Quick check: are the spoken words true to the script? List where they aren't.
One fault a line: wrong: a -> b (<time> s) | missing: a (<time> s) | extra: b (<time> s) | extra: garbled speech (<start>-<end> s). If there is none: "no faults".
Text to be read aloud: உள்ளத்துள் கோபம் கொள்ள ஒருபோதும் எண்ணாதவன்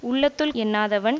missing: கோபம் கொள்ள ஒருபோதும் (0.5 s)